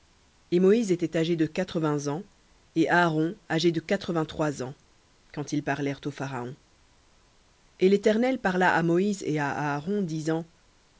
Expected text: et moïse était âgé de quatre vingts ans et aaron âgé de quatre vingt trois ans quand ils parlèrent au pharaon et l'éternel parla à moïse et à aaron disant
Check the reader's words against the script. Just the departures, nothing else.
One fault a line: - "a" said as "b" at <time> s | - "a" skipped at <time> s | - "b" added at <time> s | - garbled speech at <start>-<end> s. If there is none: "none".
none